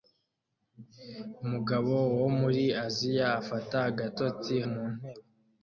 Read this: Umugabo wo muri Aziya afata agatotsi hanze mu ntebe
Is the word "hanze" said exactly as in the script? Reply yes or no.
no